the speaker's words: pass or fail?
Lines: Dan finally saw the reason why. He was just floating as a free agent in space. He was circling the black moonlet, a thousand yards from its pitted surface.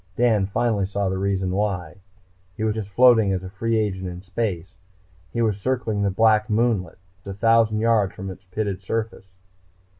pass